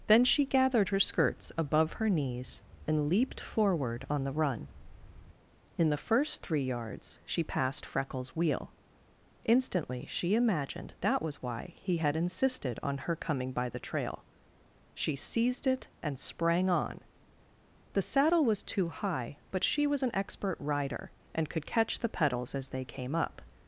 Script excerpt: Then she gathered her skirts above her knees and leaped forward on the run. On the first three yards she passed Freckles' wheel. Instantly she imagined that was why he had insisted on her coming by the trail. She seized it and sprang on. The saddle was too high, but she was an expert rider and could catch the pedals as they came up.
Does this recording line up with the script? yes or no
no